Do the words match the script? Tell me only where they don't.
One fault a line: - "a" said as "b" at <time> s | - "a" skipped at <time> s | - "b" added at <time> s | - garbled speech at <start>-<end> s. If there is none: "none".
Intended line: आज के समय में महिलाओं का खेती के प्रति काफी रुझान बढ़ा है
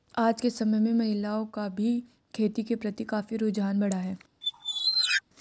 - "भी" added at 1.7 s